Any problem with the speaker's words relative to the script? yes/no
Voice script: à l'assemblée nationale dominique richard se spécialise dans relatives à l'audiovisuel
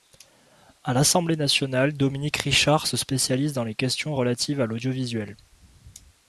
yes